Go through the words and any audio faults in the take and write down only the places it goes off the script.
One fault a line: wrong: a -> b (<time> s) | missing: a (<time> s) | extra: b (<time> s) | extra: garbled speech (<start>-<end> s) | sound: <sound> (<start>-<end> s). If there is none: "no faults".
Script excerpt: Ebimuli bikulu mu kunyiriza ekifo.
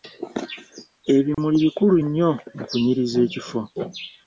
sound: dropout (1.3-1.4 s)
extra: nnyo (2.0 s)